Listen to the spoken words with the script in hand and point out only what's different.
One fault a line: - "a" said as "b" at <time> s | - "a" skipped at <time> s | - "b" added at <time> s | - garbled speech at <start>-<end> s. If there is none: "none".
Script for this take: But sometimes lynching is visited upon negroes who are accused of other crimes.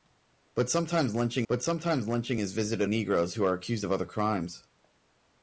- "but sometimes lynching" added at 1.5 s
- "upon" skipped at 2.9 s